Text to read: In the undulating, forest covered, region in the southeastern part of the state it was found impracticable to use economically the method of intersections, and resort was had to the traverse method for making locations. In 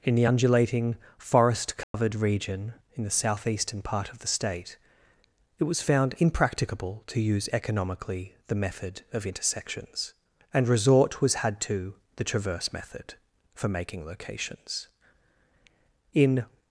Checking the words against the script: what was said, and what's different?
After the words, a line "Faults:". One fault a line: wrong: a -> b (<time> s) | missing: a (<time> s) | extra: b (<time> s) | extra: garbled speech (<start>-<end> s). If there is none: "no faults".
In the undulating, forest covered, region in the southeastern part of the state it was found impracticable to use economically the method of intersections, and resort was had to the traverse method for making locations. In
Faults:
no faults